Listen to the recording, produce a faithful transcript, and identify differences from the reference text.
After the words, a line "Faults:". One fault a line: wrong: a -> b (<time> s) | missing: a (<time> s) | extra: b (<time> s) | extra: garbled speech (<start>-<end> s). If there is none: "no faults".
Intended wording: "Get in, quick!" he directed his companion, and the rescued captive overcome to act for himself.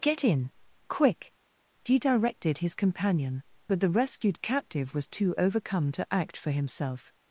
"Get in, quick!" he directed his companion, but the rescued captive was too overcome to act for himself.
Faults:
wrong: and -> but (3.7 s)
extra: was too (5.0 s)